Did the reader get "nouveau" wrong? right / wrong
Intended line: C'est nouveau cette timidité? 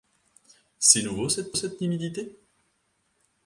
right